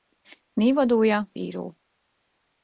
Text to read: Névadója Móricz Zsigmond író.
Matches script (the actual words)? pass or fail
fail